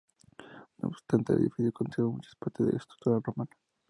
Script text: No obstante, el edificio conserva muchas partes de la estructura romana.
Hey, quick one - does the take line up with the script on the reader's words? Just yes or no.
yes